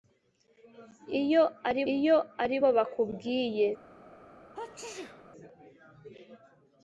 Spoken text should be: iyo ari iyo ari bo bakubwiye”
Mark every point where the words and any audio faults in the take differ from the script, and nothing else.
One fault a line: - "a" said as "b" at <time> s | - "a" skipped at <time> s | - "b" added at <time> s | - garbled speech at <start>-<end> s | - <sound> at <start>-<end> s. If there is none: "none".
- sneeze at 4.5-5.3 s